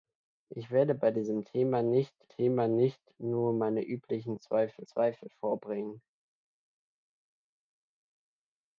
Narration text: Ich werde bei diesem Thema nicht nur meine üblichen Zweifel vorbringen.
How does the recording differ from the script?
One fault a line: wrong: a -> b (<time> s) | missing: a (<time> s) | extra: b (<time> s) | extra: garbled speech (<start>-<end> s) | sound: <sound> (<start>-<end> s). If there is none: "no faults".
extra: Thema nicht (2.3 s)
extra: Zweifel (4.9 s)